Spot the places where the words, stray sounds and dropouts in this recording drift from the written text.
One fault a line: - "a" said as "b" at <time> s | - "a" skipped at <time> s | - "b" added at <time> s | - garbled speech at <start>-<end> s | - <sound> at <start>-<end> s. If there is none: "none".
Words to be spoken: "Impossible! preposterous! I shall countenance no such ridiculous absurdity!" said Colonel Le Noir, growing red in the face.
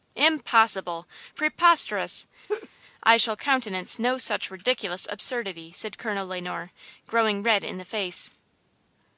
- laugh at 2.5-2.7 s